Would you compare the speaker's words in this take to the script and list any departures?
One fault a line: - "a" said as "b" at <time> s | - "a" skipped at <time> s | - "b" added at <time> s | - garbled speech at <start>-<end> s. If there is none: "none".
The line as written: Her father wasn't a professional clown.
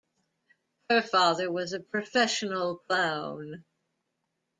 - "wasn't" said as "was" at 1.5 s